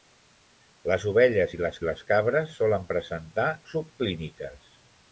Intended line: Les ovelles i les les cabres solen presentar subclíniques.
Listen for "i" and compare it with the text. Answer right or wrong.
right